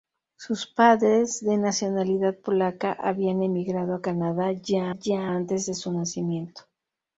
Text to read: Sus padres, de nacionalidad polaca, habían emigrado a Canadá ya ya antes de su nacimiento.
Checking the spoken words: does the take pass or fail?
pass